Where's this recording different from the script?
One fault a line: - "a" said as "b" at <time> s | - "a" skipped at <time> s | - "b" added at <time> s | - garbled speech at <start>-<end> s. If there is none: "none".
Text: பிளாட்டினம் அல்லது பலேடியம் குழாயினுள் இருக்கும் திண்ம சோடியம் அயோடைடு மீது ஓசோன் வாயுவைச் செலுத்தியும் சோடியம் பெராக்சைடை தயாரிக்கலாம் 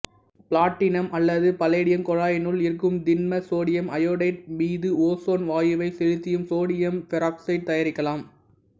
none